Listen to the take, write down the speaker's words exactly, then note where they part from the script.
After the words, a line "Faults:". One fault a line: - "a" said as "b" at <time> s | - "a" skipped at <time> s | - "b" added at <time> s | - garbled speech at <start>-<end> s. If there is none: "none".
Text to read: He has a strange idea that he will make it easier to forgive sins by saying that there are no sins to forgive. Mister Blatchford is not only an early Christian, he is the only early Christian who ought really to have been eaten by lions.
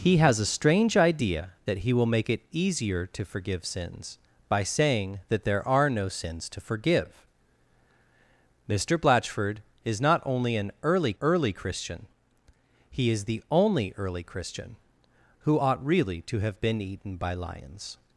He has a strange idea that he will make it easier to forgive sins by saying that there are no sins to forgive. Mister Blatchford is not only an early early Christian, he is the only early Christian who ought really to have been eaten by lions.
Faults:
- "early" added at 11.2 s